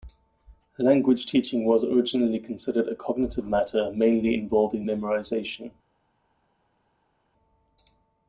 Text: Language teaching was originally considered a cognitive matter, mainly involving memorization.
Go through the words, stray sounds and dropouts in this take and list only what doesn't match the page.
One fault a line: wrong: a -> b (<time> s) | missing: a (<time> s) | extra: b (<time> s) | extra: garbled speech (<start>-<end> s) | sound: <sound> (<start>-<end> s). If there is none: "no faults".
no faults